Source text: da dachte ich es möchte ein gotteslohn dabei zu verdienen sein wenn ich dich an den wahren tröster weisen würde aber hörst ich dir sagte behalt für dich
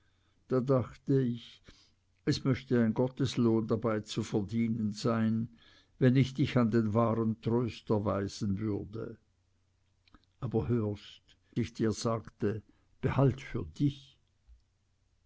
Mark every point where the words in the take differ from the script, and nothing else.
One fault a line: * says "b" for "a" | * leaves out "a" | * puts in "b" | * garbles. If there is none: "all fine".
all fine